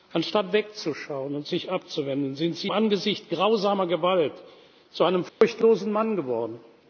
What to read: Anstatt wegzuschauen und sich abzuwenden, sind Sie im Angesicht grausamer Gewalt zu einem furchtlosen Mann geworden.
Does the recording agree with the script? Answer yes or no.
no